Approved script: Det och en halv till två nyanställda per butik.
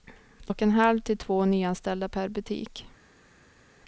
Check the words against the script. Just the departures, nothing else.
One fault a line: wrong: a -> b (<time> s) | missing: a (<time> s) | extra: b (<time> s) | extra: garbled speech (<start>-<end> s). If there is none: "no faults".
no faults